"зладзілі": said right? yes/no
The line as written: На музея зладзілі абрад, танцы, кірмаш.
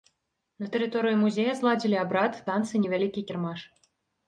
yes